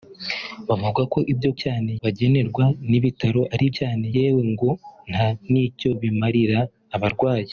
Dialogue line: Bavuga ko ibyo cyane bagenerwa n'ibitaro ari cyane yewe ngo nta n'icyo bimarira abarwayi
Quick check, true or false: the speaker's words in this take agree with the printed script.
true